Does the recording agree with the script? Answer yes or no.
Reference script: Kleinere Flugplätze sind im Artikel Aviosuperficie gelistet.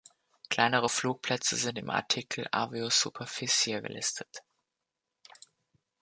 yes